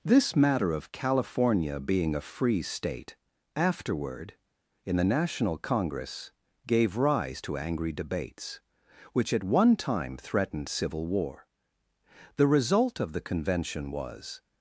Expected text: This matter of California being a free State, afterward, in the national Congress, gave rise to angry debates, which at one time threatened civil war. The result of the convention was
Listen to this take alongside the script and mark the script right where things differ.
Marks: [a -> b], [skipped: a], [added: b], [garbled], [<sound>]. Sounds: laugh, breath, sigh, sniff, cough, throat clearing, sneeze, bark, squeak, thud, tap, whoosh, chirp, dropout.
This matter of California being a free State, afterward, in the national Congress, gave rise to angry debates, which at one time threatened civil war. The result of the convention was